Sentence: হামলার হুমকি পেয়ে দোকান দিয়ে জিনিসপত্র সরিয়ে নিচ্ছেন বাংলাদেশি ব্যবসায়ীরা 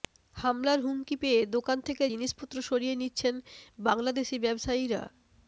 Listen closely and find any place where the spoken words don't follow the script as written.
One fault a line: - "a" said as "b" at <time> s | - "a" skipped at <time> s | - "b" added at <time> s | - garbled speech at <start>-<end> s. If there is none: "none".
- "দিয়ে" said as "থেকে" at 1.9 s